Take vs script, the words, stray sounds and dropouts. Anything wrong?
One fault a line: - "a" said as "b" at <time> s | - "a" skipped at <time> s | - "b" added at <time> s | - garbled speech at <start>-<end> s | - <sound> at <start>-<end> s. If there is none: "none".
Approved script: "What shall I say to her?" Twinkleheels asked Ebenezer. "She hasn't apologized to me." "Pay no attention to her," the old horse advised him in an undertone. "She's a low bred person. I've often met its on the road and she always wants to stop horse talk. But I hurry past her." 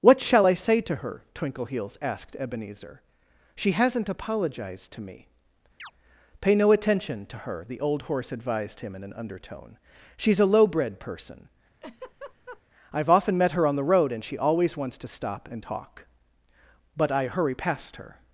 - chirp at 5.8-5.9 s
- laugh at 11.8-12.6 s
- "its" said as "her" at 13.5 s
- "horse" said as "and" at 15.5 s